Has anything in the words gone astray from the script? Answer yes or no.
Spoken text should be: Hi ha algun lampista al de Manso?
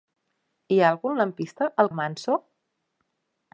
no